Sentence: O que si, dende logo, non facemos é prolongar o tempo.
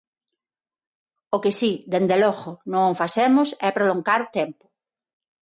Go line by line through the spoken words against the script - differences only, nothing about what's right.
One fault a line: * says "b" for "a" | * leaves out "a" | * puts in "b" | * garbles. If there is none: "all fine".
all fine